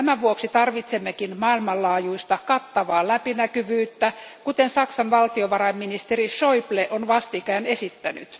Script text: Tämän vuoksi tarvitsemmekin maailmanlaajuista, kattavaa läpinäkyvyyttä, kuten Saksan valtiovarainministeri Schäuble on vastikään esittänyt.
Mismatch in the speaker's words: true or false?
false